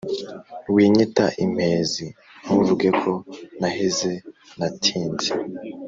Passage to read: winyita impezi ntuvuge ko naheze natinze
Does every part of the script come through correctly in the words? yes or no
yes